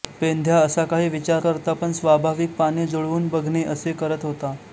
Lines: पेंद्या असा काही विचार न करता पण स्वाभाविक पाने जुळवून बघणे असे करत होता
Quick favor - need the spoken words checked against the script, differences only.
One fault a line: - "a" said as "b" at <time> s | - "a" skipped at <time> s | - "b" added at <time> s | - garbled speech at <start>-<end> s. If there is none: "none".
- "न" skipped at 1.4 s